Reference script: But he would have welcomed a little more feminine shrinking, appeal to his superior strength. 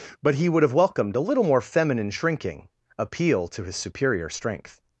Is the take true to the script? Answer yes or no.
yes